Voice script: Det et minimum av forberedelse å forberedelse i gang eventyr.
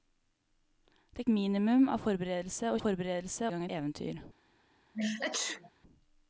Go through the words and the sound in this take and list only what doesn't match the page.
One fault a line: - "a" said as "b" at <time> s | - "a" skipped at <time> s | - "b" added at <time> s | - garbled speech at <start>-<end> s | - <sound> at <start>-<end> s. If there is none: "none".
- sneeze at 4.9-5.7 s